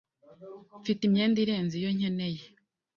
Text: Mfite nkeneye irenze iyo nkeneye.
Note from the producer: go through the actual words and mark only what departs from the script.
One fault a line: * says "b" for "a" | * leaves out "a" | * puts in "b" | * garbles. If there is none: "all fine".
* says "imyenda" for "nkeneye"